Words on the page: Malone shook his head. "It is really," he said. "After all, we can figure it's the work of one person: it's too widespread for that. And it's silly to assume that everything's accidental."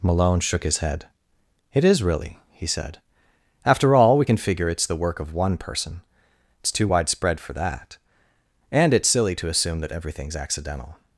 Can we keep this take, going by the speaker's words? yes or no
yes